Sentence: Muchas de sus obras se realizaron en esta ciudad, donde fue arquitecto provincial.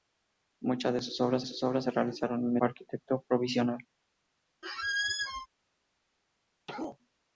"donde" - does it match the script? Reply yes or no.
no